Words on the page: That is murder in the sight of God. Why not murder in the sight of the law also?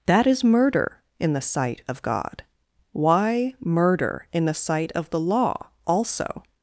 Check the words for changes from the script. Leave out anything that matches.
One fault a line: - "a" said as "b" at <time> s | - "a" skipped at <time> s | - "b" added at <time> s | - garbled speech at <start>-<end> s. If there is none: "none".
- "not" skipped at 3.5 s